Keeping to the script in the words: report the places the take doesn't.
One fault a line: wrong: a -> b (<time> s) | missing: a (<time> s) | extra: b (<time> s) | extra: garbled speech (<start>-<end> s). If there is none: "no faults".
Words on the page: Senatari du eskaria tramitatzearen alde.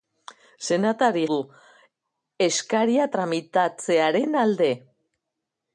no faults